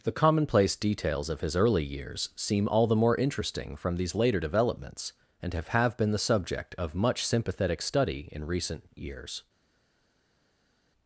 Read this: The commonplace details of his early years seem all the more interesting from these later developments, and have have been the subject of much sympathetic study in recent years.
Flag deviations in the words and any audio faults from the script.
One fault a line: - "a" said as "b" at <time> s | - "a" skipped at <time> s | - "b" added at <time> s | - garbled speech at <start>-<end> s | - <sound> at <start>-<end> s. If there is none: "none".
none